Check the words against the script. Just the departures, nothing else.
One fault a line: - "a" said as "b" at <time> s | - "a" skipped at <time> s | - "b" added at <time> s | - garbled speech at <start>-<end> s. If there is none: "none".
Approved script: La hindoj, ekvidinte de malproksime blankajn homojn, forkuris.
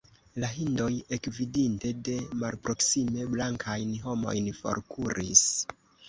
none